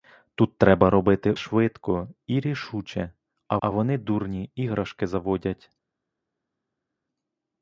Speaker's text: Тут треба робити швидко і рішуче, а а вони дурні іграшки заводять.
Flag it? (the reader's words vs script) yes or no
no